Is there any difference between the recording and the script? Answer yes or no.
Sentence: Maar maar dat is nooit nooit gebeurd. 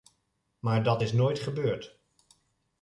yes